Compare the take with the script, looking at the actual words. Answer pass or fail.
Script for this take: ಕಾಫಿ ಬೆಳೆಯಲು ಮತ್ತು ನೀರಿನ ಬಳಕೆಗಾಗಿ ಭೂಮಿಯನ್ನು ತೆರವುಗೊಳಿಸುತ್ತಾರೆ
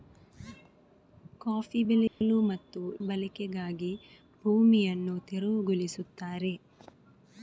fail